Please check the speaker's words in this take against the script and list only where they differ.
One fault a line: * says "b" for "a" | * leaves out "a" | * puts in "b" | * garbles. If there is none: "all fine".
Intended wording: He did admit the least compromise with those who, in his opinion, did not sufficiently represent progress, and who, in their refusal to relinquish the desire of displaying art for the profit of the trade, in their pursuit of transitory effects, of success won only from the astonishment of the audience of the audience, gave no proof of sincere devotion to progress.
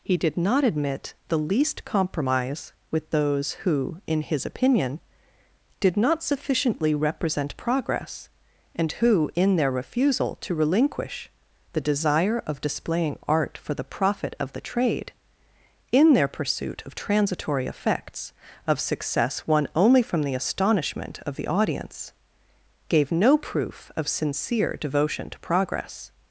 * puts in "not"
* leaves out "of the audience"